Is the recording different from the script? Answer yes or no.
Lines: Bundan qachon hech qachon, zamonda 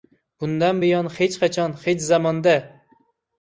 yes